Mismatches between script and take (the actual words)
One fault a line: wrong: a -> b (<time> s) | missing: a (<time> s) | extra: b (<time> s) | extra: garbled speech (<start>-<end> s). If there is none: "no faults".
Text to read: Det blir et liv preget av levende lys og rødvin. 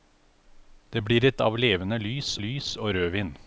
missing: liv preget (1.4 s)
extra: lys (2.4 s)